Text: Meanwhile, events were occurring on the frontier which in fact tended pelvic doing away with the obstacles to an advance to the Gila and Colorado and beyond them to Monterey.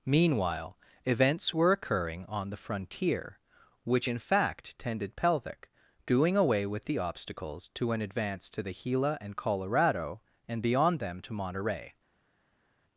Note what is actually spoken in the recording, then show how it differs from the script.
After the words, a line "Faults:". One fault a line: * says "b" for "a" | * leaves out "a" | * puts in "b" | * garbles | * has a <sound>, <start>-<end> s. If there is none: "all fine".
Meanwhile, events were occurring on the frontier which in fact tended pelvic doing away with the obstacles to an advance to the Gila and Colorado and beyond them to Monterey.
Faults:
all fine